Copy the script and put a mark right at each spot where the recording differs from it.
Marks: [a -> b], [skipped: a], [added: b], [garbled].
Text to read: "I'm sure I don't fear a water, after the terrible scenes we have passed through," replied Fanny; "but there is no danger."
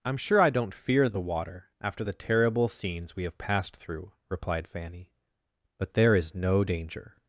"I'm sure I don't fear [a -> the] water, after the terrible scenes we have passed through," replied Fanny; "but there is no danger."